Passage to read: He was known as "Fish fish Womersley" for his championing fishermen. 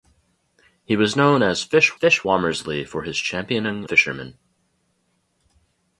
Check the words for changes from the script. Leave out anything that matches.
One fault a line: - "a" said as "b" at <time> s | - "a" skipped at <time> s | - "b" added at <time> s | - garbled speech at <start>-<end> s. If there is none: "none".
none